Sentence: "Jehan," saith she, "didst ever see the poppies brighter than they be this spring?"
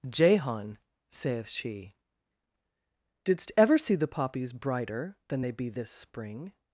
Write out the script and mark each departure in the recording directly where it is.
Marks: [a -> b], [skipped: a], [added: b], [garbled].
"Jehan," saith she, "didst ever see the poppies brighter than they be this spring?"